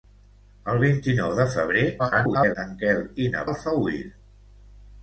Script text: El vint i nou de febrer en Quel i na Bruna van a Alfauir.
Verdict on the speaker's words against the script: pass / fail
fail